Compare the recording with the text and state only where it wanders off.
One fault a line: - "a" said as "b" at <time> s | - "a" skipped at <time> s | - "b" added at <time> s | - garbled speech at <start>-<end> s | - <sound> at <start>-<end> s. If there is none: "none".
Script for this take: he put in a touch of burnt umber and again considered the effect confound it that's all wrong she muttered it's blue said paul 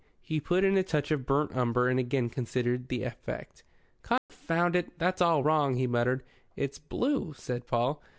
- dropout at 4.2-4.3 s
- "she" said as "he" at 5.8 s